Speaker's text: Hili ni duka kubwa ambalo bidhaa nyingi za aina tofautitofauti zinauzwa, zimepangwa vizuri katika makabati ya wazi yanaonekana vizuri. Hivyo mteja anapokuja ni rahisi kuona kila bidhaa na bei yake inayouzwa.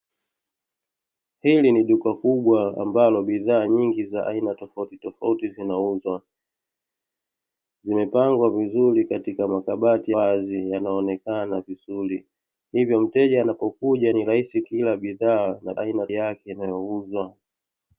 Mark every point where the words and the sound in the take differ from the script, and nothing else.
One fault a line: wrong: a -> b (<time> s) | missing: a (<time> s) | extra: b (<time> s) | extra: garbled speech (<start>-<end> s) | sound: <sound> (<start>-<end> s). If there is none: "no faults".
missing: ya (10.1 s)
missing: kuona (14.6 s)
wrong: bei -> aina (15.8 s)